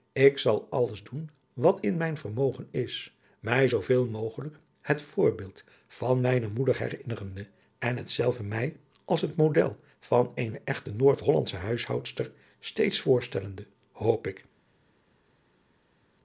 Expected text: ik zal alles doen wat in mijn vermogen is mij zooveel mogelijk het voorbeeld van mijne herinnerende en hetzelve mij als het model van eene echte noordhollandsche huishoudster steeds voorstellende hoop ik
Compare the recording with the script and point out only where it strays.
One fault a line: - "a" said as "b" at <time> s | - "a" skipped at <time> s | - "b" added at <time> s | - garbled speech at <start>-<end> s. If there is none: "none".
- "moeder" added at 6.5 s